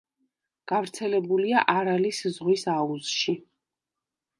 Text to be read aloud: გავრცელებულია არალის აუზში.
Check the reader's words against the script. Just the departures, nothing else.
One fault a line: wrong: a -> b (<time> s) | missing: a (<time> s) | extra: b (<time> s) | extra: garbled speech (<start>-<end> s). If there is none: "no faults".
extra: ზღვის (2.4 s)